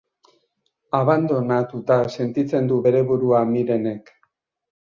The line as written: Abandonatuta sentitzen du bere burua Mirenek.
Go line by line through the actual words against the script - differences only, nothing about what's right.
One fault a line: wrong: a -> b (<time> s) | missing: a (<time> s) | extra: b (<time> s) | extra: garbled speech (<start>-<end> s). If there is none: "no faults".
no faults